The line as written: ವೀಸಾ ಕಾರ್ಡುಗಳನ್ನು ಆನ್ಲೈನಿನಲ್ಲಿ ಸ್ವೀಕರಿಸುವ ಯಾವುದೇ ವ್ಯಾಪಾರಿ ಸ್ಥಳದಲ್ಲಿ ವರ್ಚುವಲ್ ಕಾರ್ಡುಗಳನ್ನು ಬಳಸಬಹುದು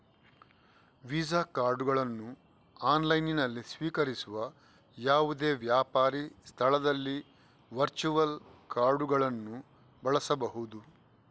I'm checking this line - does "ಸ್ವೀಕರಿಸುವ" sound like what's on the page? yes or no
yes